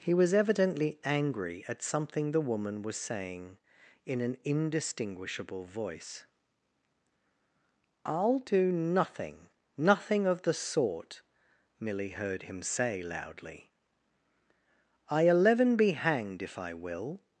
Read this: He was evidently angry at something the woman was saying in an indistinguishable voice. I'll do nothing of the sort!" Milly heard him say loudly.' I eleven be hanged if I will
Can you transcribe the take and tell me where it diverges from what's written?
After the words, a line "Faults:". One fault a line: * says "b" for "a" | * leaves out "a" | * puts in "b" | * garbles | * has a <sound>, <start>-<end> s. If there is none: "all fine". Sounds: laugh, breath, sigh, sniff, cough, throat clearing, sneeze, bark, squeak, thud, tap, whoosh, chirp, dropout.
He was evidently angry at something the woman was saying in an indistinguishable voice. I'll do nothing nothing of the sort!" Milly heard him say loudly.' I eleven be hanged if I will
Faults:
* puts in "nothing"